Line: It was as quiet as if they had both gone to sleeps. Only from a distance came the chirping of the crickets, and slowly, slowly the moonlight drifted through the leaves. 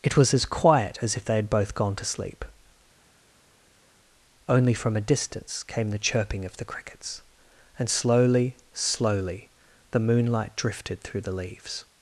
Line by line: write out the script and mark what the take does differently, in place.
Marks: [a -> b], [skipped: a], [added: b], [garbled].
It was as quiet as if they had both gone to [sleeps. -> sleep] Only from a distance came the chirping of the crickets, and slowly, slowly the moonlight drifted through the leaves.